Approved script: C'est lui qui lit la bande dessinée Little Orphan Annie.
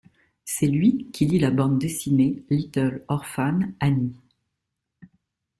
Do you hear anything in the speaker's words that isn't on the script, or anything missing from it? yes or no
no